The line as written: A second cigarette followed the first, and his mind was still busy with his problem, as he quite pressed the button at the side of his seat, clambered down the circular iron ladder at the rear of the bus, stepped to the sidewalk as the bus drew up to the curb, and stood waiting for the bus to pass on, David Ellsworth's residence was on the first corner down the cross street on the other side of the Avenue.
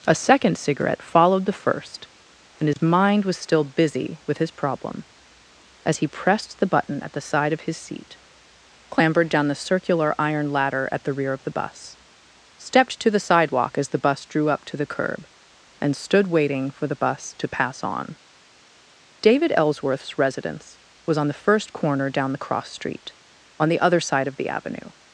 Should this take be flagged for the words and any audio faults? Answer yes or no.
yes